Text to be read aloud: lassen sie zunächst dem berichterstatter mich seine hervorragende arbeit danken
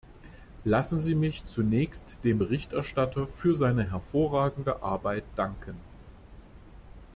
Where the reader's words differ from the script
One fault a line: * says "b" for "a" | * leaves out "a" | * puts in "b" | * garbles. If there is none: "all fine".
* puts in "mich"
* says "für" for "mich"